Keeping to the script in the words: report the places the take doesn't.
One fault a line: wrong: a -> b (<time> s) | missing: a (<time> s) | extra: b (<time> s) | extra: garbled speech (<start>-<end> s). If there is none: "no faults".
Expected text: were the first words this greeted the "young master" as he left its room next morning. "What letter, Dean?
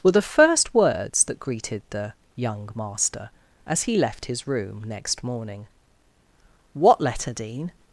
wrong: this -> that (1.2 s)
wrong: its -> his (4.3 s)